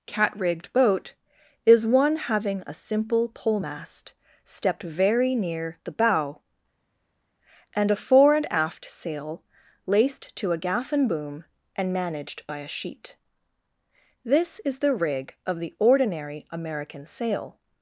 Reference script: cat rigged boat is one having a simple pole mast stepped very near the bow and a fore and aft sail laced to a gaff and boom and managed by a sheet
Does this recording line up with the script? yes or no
no